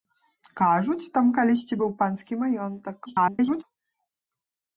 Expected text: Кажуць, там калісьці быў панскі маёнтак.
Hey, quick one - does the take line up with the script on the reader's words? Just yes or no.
no